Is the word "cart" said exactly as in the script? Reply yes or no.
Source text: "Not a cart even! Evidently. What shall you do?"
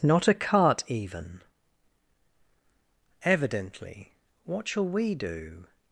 yes